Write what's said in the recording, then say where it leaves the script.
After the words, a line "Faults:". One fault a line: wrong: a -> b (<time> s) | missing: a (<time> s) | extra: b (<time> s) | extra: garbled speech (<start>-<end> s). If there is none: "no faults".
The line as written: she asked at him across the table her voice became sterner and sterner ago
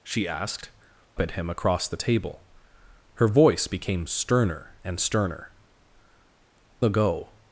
she asked at him across the table her voice became sterner and sterner ago
Faults:
no faults